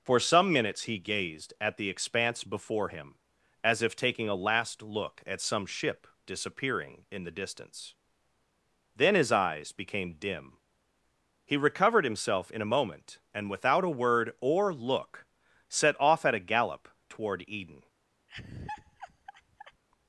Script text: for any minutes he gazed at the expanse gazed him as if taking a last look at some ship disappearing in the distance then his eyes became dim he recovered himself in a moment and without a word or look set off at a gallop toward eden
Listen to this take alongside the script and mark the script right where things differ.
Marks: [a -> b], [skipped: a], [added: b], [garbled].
for [any -> some] minutes he gazed at the expanse [gazed -> before] him as if taking a last look at some ship disappearing in the distance then his eyes became dim he recovered himself in a moment and without a word or look set off at a gallop toward eden